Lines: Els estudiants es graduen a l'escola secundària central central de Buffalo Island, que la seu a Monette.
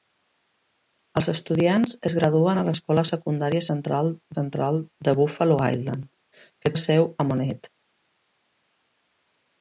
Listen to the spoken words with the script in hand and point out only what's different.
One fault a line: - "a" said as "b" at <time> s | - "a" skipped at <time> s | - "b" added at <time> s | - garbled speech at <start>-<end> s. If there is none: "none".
none